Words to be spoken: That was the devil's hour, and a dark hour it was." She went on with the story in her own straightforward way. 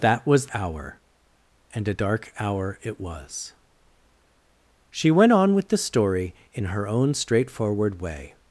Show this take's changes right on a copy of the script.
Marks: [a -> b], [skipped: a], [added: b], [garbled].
That was [skipped: the devil's] hour, and a dark hour it was." She went on with the story in her own straightforward way.